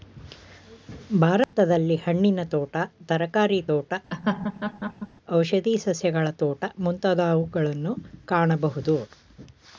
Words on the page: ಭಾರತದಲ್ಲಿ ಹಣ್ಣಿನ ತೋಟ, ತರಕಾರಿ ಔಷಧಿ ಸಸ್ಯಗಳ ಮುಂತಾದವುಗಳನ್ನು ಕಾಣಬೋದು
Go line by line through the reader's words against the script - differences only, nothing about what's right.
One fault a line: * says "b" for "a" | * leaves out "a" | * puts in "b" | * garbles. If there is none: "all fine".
* puts in "ತೋಟ"
* puts in "ತೋಟ"